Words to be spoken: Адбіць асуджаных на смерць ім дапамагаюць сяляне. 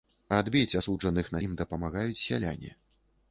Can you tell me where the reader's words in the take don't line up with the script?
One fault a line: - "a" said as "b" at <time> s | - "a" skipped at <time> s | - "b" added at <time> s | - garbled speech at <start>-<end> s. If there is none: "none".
- "смерць" skipped at 1.4 s